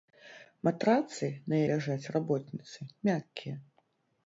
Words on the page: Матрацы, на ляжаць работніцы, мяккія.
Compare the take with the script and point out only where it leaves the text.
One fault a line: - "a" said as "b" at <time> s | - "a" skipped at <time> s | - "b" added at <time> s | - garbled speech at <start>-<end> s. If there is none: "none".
none